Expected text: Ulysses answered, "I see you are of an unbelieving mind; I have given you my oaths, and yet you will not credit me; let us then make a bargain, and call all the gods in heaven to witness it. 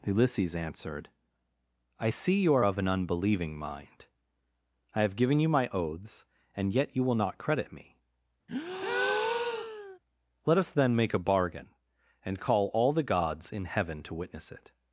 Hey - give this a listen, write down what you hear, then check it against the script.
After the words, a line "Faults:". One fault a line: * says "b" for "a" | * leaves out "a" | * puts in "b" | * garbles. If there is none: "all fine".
Ulysses answered, "I see you are of an unbelieving mind; I have given you my oaths, and yet you will not credit me; let us then make a bargain, and call all the gods in heaven to witness it.
Faults:
all fine